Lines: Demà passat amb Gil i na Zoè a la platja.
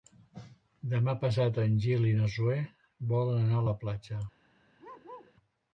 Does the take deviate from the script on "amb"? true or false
true